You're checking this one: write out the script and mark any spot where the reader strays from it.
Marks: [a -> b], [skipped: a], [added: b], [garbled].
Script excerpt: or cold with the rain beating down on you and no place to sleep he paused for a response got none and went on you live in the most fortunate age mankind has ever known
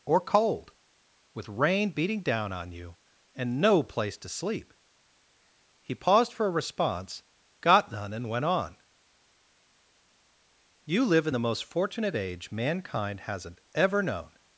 or cold with [skipped: the] rain beating down on you and no place to sleep he paused for a response got none and went on you live in the most fortunate age mankind [has -> hasn't] ever known